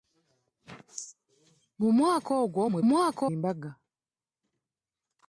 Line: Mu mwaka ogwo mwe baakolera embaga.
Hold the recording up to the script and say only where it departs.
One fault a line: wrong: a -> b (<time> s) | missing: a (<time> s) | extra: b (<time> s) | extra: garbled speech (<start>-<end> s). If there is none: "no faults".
wrong: baakolera -> mwaka (2.9 s)